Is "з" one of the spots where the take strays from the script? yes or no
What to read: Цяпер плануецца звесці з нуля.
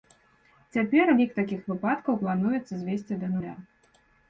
yes